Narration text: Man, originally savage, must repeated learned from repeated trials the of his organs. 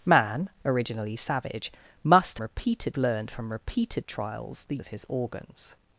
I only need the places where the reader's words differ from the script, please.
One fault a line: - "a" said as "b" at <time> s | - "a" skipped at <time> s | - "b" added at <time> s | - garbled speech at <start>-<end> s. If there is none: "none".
none